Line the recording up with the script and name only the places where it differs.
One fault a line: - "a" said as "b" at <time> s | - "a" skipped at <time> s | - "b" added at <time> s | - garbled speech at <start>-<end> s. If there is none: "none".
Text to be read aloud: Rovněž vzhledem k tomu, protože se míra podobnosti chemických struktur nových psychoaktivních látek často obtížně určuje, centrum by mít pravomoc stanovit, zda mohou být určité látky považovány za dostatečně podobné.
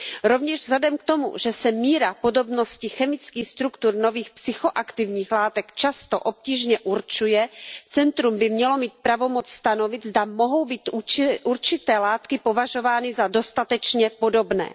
- "protože" said as "že" at 1.4 s
- "mělo" added at 8.5 s